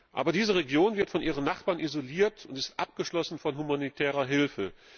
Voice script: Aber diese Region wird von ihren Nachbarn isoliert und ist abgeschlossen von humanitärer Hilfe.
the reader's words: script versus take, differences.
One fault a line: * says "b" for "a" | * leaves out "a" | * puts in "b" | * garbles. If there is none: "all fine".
all fine